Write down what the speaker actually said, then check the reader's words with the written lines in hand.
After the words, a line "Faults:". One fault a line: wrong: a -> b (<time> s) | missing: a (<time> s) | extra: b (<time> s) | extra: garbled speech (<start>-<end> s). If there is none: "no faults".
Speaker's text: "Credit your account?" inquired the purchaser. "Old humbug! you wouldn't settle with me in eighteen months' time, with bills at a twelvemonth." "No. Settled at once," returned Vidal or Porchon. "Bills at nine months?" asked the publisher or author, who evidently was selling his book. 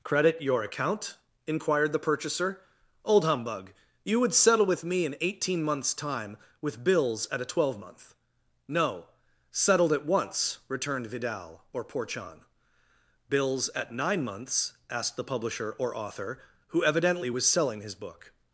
"Credit your account?" inquired the purchaser. "Old humbug! you would settle with me in eighteen months' time, with bills at a twelvemonth." "No. Settled at once," returned Vidal or Porchon. "Bills at nine months?" asked the publisher or author, who evidently was selling his book.
Faults:
wrong: wouldn't -> would (4.2 s)